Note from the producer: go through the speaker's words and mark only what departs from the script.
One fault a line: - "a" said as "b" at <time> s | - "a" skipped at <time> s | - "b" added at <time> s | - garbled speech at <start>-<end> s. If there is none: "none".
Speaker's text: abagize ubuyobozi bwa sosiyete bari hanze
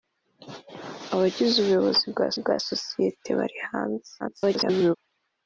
- "bwa" added at 2.4 s
- garbled speech at 4.2-5.0 s